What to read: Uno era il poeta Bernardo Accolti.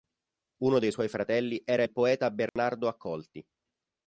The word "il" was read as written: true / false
true